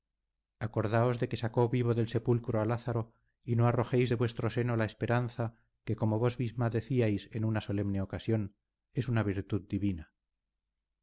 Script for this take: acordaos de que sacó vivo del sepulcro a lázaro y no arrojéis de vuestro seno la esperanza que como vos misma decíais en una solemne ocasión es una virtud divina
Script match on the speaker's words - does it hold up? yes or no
yes